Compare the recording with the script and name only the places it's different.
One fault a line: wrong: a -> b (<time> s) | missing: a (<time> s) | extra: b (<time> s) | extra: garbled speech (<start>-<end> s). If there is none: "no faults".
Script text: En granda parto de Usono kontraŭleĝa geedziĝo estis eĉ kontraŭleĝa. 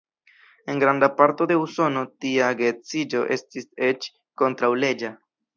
wrong: kontraŭleĝa -> tia (2.3 s)